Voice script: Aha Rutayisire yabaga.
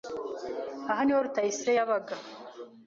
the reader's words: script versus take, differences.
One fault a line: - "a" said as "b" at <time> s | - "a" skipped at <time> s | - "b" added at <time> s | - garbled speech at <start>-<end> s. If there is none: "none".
- "niho" added at 1.0 s